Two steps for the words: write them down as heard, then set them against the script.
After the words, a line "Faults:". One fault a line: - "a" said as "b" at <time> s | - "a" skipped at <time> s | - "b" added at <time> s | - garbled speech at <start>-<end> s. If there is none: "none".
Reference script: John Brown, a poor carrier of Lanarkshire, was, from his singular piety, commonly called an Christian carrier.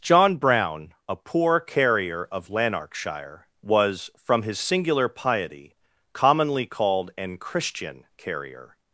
John Brown, a poor carrier of Lanarkshire, was, from his singular piety, commonly called an Christian carrier.
Faults:
none